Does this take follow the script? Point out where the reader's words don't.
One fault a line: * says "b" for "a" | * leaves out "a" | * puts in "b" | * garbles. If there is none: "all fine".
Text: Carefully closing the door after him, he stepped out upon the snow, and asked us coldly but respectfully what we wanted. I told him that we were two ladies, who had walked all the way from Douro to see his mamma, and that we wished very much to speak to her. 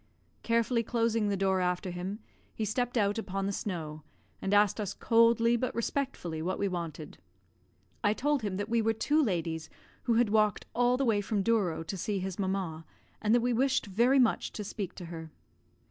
all fine